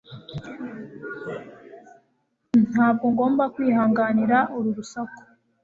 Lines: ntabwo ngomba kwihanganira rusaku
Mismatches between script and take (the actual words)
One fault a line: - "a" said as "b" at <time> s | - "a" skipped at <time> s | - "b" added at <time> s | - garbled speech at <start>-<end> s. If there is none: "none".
- "uru" added at 4.6 s